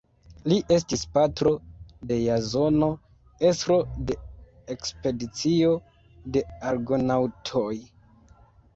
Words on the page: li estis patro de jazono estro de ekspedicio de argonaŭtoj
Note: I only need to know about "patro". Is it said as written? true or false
true